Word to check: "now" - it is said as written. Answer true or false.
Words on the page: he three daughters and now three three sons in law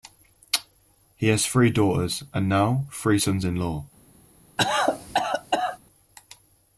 true